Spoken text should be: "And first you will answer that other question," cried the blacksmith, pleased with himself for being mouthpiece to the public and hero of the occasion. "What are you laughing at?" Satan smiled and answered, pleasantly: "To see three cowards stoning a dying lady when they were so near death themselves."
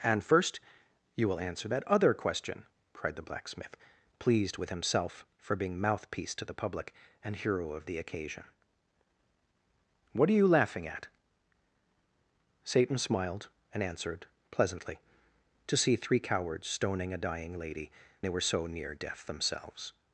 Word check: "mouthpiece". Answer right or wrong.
right